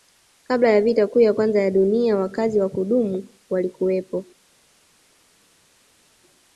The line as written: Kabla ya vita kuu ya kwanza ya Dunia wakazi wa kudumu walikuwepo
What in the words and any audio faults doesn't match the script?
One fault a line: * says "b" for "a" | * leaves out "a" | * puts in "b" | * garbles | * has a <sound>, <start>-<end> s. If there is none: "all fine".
all fine